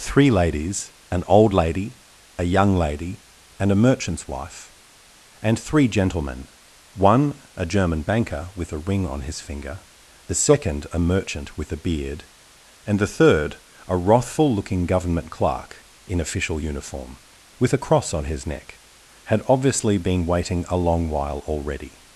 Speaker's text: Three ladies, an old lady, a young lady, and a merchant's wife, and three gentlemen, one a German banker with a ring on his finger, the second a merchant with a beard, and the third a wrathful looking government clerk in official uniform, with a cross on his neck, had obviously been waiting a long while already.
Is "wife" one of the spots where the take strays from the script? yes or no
no